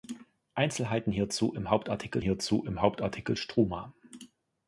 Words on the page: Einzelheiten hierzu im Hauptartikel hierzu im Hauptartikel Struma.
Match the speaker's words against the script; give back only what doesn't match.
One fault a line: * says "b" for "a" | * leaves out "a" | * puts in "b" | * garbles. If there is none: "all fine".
all fine